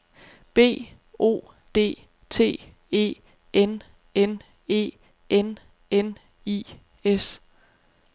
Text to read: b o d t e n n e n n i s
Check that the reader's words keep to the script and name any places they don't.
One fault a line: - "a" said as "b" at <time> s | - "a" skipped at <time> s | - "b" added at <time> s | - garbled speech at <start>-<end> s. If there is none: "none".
none